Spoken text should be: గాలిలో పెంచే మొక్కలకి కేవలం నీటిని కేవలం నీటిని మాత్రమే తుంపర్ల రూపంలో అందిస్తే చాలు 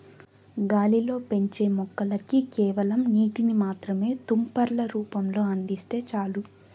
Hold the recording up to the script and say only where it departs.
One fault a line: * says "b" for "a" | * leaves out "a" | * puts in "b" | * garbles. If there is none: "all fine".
* leaves out "కేవలం నీటిని"